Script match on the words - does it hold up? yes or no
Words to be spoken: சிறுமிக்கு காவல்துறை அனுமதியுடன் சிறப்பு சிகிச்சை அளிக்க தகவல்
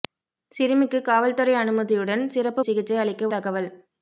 yes